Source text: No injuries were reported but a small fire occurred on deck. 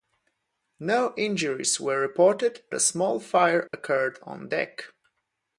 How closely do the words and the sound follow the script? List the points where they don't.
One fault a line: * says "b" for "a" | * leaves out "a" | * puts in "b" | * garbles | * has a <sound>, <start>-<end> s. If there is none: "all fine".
* leaves out "but"
* has a dropout, 3.7-3.7 s